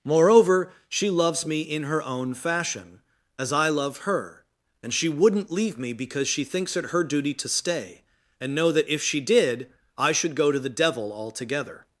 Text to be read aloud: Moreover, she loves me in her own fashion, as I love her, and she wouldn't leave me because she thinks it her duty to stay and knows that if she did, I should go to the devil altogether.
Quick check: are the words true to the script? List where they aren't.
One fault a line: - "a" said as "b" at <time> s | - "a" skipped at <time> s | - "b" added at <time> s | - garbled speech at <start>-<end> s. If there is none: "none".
- "knows" said as "know" at 8.6 s